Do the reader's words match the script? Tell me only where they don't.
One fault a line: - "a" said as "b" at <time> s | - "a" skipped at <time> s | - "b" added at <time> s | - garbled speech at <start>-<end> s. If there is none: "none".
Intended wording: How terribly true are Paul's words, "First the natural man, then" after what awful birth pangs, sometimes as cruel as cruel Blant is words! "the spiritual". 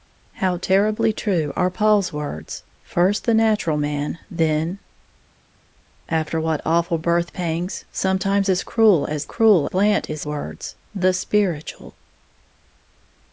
none